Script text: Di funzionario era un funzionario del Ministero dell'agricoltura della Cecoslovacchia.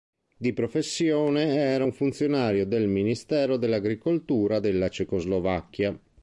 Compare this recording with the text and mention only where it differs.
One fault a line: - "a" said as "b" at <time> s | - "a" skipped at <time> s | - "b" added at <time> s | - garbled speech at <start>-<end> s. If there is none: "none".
- "funzionario" said as "professione" at 0.5 s